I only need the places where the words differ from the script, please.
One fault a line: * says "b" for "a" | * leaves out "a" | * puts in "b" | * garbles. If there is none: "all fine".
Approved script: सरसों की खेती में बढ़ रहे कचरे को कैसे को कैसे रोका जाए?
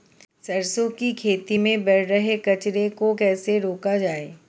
* leaves out "को कैसे"